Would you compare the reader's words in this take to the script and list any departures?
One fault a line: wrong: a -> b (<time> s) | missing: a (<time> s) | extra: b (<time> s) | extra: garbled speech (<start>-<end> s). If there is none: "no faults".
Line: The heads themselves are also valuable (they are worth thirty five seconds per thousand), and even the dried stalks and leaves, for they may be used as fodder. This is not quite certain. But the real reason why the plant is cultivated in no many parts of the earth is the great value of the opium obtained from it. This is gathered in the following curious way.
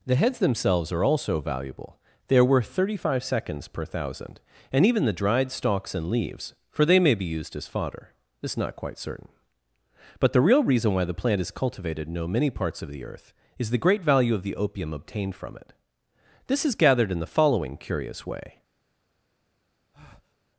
no faults